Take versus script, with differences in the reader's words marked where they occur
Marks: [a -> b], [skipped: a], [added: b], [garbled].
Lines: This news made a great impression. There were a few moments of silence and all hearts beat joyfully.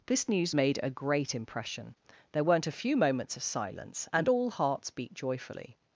This news made a great impression. There [were -> weren't] a few moments of silence and all hearts beat joyfully.